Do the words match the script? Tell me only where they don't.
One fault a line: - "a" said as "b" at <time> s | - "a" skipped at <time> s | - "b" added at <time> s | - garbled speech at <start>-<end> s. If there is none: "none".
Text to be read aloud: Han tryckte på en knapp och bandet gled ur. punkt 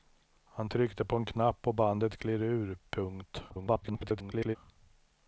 - garbled speech at 3.5-4.6 s